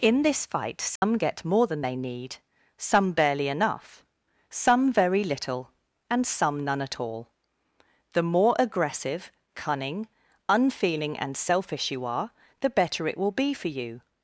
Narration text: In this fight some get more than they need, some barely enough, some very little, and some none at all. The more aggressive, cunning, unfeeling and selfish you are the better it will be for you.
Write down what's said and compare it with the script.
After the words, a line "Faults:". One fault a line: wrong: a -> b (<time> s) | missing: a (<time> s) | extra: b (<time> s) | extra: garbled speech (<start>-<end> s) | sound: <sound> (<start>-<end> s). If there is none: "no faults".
In this fight some get more than they need, some barely enough, some very little, and some none at all. The more aggressive, cunning, unfeeling and selfish you are the better it will be for you.
Faults:
sound: dropout (1.0-1.0 s)